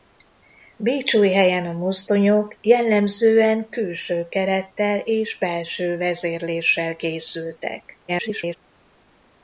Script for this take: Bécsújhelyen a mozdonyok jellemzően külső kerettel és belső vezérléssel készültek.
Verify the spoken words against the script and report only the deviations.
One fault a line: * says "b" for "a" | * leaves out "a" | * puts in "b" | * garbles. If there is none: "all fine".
* garbles